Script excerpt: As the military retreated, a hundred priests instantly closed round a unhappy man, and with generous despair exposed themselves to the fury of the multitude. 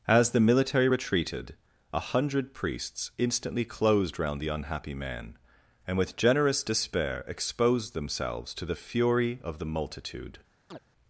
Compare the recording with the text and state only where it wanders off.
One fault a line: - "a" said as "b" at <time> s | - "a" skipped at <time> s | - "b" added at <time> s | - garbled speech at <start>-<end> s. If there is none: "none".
- "a" said as "the" at 4.4 s